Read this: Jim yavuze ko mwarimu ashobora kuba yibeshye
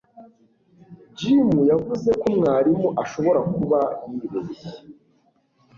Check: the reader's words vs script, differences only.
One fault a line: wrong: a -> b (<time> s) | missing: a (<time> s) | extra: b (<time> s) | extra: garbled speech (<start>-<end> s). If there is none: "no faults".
no faults